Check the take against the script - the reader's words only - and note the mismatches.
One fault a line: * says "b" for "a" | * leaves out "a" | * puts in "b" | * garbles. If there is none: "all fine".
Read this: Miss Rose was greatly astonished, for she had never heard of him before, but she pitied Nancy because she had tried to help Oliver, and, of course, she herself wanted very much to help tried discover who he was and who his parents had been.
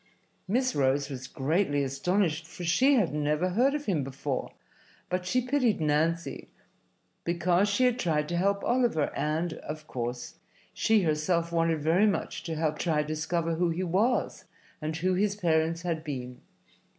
all fine